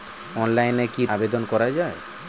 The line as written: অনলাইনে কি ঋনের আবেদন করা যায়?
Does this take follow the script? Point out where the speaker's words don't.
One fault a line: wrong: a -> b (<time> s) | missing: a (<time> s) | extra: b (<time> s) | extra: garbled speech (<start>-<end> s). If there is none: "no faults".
missing: ঋনের (1.0 s)